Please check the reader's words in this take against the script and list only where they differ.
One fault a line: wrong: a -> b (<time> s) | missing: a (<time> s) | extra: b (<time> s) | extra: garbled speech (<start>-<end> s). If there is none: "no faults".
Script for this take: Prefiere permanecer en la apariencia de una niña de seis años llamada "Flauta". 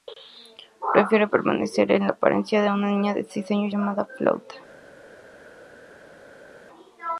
no faults